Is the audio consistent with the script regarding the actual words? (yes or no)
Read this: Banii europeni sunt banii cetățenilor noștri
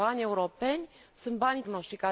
no